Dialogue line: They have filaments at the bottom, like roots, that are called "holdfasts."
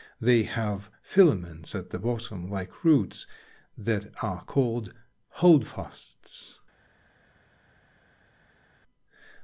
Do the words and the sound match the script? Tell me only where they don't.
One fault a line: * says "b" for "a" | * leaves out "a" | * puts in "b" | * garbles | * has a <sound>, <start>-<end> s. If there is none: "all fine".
all fine